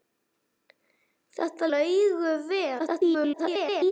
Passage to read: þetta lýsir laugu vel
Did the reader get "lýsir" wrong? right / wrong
wrong